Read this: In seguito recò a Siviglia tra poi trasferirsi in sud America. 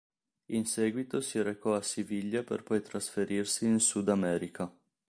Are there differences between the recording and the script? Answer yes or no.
yes